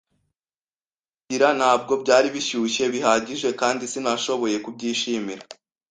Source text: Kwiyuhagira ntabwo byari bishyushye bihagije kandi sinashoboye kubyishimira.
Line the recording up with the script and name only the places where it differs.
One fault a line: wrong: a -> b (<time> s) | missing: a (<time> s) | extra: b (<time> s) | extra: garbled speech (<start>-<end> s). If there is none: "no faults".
no faults